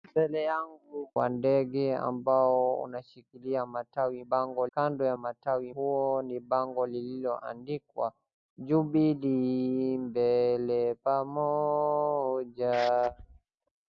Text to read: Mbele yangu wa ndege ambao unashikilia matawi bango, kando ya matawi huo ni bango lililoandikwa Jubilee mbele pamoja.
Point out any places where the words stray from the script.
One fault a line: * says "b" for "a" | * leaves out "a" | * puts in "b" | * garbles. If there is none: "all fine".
all fine